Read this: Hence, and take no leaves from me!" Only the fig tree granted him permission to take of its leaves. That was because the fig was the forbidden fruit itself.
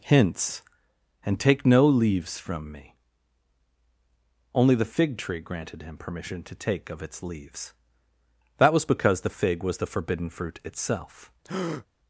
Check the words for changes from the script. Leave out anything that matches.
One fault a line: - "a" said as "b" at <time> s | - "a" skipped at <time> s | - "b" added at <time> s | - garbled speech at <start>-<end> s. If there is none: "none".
- "Hence" said as "Hints" at 0.0 s